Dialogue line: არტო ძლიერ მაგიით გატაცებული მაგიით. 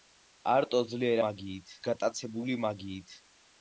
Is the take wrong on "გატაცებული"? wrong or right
right